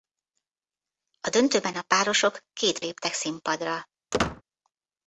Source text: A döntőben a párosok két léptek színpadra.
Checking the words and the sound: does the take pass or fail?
fail